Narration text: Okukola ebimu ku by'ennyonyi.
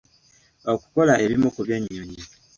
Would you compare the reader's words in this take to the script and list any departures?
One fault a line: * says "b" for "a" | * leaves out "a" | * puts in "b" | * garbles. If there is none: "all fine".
all fine